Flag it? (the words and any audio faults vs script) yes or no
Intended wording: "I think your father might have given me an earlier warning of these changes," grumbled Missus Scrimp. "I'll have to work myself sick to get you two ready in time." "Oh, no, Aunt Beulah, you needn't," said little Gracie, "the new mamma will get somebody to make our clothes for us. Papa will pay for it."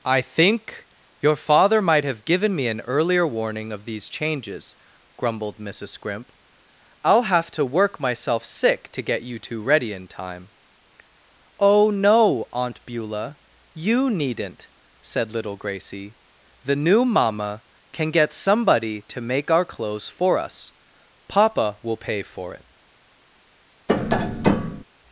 yes